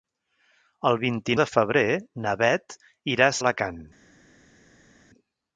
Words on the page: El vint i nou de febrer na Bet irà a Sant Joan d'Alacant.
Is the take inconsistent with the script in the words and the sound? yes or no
yes